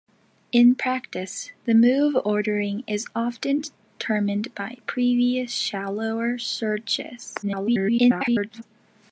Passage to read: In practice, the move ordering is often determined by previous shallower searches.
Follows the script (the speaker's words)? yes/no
no